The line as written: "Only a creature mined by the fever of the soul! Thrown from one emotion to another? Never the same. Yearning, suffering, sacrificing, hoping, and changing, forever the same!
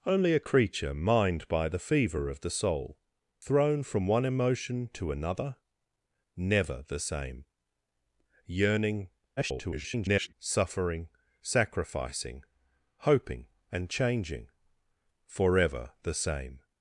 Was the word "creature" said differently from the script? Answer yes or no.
no